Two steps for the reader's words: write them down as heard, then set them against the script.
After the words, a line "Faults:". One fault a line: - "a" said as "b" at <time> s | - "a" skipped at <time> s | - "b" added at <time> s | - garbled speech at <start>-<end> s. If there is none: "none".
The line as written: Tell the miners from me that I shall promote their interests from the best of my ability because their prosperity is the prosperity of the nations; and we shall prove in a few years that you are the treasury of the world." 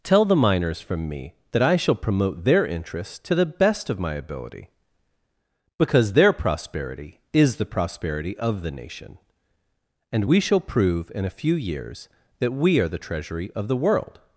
Tell the miners from me that I shall promote their interests to the best of my ability because their prosperity is the prosperity of the nation; and we shall prove in a few years that we are the treasury of the world."
Faults:
- "from" said as "to" at 3.2 s
- "nations" said as "nation" at 8.7 s
- "you" said as "we" at 12.5 s